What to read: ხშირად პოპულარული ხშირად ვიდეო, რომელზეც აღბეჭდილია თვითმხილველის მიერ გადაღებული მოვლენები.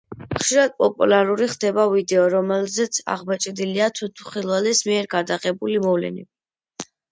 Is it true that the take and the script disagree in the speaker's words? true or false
true